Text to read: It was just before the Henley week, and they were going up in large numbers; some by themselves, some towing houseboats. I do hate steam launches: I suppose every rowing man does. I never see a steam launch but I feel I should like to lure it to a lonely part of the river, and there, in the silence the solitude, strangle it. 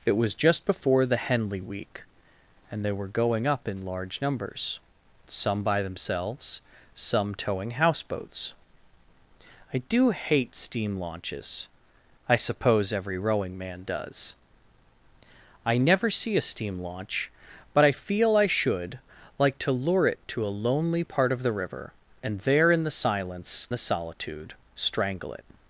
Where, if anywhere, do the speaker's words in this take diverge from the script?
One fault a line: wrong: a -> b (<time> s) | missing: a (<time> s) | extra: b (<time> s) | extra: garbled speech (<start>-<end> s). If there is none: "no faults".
no faults